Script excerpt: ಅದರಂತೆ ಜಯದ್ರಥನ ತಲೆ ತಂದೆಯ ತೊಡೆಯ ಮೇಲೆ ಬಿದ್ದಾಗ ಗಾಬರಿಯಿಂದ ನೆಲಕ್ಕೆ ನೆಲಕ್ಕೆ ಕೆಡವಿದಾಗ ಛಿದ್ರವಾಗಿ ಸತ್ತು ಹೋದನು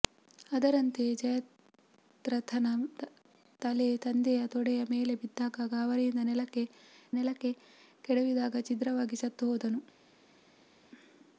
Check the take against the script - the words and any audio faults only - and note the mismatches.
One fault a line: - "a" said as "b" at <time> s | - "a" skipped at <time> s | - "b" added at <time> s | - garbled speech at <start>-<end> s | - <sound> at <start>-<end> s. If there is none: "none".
none